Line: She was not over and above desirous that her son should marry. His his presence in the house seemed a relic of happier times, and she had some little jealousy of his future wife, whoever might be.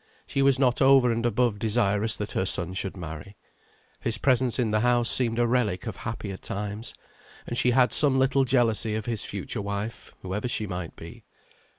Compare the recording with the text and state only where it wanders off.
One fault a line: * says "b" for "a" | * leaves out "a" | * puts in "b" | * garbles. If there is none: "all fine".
* leaves out "his"
* puts in "she"